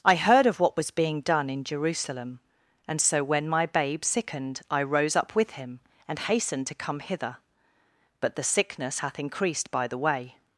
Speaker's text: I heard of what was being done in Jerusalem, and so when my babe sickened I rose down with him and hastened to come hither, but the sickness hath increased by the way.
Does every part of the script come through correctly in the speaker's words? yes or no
no